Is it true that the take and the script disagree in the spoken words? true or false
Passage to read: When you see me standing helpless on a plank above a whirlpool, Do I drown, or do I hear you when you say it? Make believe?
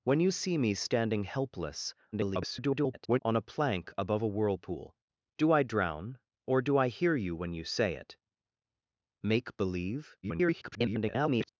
true